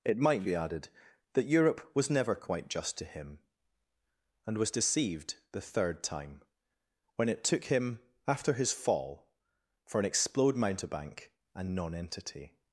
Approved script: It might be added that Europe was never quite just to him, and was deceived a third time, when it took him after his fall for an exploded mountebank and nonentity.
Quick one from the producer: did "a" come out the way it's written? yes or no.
no